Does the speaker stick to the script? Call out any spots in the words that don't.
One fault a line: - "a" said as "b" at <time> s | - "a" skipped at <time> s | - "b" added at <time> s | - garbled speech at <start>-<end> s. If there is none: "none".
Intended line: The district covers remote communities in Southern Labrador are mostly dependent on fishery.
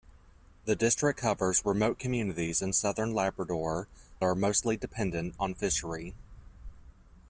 none